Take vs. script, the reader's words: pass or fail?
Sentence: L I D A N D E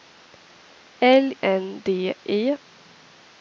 fail